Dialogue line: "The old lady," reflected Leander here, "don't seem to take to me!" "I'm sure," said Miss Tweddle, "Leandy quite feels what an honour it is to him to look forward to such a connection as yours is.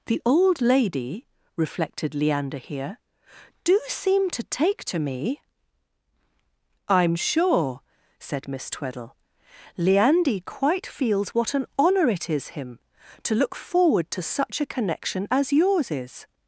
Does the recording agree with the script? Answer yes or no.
no